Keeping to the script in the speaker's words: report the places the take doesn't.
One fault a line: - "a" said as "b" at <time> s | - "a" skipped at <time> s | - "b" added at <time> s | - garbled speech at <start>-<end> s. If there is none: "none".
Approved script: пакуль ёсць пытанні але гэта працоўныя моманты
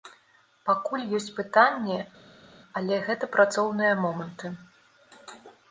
none